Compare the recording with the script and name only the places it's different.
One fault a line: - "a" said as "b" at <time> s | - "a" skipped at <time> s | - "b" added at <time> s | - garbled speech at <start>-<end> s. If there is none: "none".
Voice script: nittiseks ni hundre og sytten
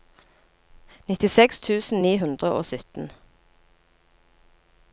- "tusen" added at 1.7 s